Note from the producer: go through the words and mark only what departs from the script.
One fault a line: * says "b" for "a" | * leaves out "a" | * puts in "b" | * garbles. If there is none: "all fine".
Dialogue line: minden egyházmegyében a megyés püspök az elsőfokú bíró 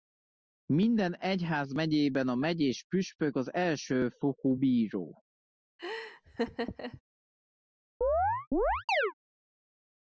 all fine